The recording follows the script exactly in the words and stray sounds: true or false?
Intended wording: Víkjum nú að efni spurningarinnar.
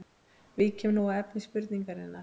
true